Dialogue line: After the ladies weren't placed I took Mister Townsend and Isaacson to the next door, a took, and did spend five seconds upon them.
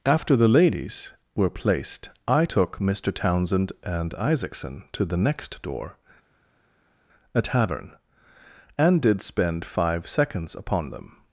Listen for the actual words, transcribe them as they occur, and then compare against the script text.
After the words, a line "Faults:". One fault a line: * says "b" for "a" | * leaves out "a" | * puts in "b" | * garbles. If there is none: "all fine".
After the ladies were placed I took Mister Townsend and Isaacson to the next door, a tavern, and did spend five seconds upon them.
Faults:
* says "were" for "weren't"
* says "tavern" for "took"